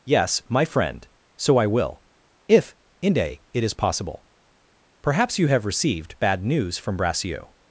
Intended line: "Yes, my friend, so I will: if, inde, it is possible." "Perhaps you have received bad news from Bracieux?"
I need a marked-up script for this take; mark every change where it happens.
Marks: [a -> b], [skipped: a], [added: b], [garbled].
"Yes, my friend, so I will: if, inde, it is possible." "Perhaps you have received bad news from Bracieux?"